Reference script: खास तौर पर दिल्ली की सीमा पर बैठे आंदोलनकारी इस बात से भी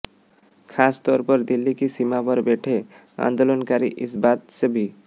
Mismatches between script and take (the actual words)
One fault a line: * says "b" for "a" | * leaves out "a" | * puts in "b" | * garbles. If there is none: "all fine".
all fine